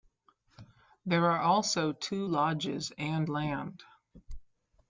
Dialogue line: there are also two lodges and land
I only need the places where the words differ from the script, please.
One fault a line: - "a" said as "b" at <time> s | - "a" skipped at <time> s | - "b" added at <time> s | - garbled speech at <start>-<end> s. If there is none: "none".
none